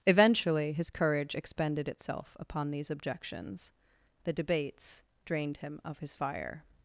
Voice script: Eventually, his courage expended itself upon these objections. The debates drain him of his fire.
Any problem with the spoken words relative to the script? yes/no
yes